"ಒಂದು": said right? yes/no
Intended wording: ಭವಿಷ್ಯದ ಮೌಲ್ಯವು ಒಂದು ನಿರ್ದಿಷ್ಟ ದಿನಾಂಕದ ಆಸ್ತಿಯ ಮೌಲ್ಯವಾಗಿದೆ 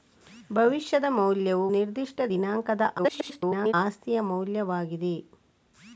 no